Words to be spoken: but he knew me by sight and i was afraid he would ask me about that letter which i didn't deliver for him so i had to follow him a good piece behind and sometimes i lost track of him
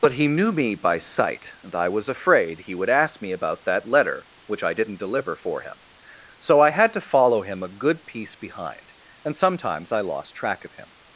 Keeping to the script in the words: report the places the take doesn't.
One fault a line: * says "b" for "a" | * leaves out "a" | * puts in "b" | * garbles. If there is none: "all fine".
all fine